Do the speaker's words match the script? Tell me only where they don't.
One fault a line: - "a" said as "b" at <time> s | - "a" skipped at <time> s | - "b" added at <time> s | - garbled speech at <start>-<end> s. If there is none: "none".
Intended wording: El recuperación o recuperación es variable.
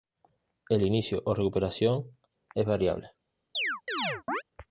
- "recuperación" said as "inicio" at 0.8 s